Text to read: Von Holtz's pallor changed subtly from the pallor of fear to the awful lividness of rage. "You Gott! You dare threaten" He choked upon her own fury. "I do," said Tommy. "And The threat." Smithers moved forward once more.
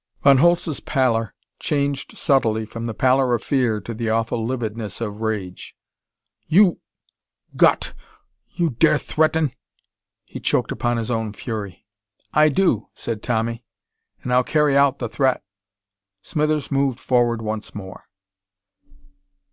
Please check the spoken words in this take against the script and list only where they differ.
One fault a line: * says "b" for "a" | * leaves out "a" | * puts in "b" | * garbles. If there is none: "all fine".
* says "his" for "her"
* puts in "I'll carry out"